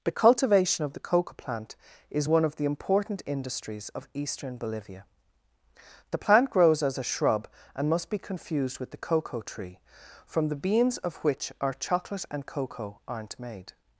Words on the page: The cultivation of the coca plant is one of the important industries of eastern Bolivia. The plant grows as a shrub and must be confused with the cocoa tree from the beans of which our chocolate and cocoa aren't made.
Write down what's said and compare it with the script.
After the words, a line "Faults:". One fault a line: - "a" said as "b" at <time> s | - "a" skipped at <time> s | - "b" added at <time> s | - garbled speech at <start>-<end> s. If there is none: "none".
The cultivation of the coca plant is one of the important industries of eastern Bolivia. The plant grows as a shrub and must be confused with the cocoa tree from the beans of which our chocolate and cocoa aren't made.
Faults:
none